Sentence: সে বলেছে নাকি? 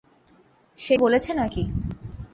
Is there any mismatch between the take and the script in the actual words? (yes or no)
no